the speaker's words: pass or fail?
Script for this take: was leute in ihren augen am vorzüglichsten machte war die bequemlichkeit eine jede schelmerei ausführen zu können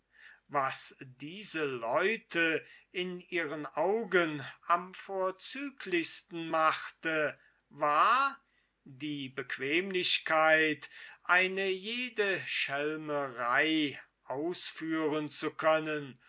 fail